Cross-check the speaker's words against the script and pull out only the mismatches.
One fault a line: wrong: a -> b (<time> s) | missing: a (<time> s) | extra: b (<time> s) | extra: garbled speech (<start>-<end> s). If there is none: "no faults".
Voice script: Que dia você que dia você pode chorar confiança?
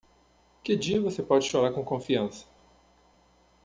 missing: que dia você (1.2 s)
extra: com (1.7 s)